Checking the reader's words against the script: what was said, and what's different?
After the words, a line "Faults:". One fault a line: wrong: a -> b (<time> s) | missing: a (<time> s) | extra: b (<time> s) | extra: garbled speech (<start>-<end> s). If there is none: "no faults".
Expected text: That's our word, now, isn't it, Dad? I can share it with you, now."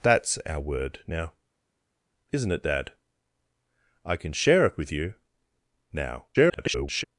That's our word, now, isn't it, Dad? I can share it with you, now." [garbled]
Faults:
extra: garbled speech (6.3-7.0 s)